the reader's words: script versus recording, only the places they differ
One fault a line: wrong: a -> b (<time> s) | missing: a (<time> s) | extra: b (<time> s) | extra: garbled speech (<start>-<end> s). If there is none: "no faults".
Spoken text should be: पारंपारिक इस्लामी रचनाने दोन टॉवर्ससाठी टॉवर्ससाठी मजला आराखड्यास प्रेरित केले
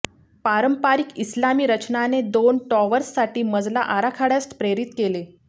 missing: टॉवर्ससाठी (3.4 s)